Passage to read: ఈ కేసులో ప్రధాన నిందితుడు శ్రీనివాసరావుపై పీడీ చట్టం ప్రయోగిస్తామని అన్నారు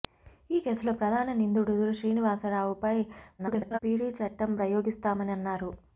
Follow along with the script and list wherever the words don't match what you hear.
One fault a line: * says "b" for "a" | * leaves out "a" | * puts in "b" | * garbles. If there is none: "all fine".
* garbles